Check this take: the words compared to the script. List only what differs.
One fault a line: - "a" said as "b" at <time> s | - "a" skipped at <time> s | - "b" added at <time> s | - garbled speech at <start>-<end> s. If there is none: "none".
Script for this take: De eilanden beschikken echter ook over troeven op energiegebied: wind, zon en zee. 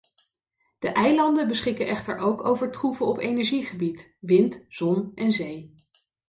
none